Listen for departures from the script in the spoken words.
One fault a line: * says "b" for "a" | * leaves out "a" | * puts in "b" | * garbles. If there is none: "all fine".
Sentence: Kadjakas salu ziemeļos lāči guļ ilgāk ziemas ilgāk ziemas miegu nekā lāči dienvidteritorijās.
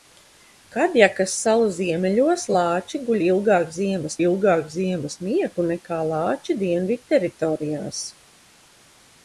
all fine